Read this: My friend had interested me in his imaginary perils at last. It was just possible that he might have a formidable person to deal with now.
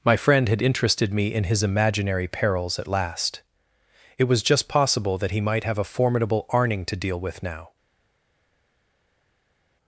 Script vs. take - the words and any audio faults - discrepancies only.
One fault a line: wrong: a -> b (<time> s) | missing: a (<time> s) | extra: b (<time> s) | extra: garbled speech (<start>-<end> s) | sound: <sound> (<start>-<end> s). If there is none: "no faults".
wrong: person -> arning (6.5 s)